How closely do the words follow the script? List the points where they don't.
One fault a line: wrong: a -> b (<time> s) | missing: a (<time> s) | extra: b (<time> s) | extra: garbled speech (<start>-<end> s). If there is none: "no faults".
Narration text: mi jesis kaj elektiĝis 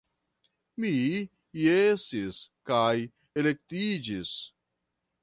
no faults